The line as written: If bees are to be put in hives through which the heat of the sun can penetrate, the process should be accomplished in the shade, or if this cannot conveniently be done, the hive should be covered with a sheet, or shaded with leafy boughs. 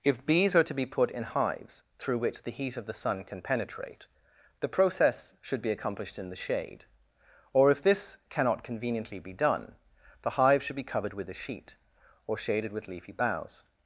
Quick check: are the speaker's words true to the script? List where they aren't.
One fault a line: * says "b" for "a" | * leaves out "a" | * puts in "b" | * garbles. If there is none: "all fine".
all fine